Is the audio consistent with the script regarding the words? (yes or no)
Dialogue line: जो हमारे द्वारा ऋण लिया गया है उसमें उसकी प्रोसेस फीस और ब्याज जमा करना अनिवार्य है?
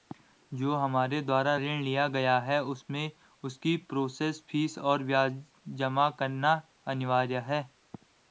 yes